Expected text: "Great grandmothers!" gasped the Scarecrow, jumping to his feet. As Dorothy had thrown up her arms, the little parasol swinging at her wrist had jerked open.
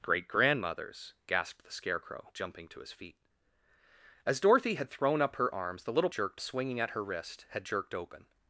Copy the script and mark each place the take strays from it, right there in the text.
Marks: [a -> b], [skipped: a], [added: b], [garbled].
"Great grandmothers!" gasped the Scarecrow, jumping to his feet. As Dorothy had thrown up her arms, the little [parasol -> jerked] swinging at her wrist had jerked open.